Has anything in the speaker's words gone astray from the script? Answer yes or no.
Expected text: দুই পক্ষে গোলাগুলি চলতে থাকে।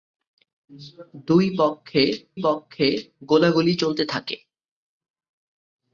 yes